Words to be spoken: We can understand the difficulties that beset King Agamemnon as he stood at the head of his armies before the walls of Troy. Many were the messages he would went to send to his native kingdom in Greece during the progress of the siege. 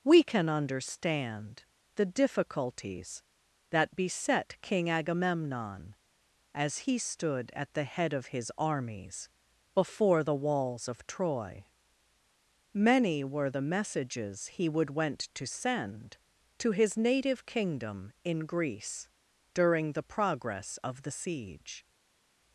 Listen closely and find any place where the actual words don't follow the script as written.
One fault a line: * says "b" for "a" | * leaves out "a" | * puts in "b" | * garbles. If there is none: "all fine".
all fine